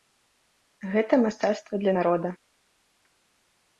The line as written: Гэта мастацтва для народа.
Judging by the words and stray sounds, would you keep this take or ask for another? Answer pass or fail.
pass